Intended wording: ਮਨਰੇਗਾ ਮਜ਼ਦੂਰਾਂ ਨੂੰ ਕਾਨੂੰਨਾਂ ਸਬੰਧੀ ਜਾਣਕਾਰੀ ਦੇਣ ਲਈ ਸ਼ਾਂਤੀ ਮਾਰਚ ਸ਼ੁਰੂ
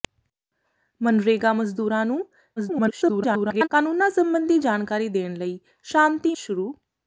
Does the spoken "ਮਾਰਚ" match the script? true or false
false